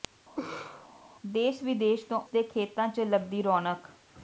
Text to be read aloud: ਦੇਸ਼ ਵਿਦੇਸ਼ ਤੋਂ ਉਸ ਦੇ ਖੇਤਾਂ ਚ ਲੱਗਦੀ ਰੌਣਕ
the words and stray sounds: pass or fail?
fail